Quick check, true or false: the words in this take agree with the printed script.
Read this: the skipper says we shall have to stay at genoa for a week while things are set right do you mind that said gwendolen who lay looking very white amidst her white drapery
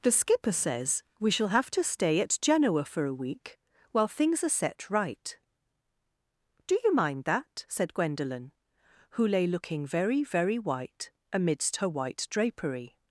false